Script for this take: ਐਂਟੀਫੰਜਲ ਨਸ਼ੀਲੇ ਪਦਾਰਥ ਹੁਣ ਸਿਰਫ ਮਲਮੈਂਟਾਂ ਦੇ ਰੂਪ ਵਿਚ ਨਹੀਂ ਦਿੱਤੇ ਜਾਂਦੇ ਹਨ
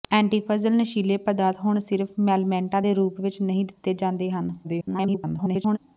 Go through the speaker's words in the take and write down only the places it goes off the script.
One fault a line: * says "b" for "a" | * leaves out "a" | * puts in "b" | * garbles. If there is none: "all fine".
* garbles